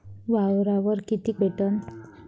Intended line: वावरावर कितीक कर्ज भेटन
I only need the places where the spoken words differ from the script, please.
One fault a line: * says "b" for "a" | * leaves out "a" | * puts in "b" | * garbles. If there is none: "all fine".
* leaves out "कर्ज"